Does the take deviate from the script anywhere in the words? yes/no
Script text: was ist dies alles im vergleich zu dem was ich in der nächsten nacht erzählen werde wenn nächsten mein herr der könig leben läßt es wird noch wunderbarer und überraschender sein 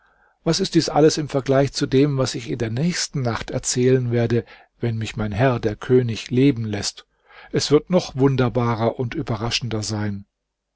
yes